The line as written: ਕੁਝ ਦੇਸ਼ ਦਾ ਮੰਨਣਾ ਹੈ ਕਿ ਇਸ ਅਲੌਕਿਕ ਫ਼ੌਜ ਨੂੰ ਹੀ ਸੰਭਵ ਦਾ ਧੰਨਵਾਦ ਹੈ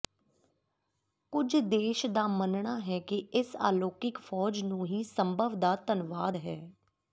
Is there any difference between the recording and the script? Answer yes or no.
no